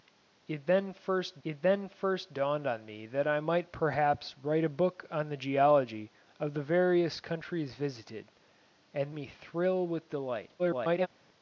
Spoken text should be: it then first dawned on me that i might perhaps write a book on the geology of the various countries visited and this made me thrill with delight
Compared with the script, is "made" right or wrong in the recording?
wrong